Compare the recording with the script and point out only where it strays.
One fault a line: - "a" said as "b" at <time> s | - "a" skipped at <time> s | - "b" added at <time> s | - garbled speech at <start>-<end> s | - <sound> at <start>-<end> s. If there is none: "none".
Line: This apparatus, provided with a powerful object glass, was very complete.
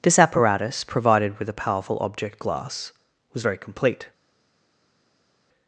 none